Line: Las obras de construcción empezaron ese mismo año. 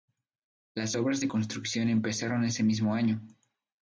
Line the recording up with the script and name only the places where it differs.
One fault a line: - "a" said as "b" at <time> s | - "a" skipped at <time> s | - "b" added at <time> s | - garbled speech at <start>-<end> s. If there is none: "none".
none